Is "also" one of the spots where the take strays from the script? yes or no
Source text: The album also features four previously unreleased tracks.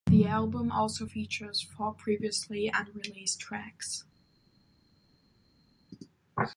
no